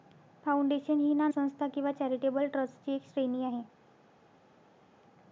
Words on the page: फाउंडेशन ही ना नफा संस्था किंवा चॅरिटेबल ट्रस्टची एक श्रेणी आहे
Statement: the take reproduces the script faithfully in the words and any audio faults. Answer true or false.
false